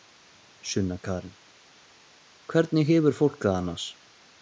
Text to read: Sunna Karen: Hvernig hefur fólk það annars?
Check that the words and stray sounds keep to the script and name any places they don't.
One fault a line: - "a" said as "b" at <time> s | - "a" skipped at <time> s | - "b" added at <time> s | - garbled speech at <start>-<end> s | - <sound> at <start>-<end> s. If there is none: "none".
none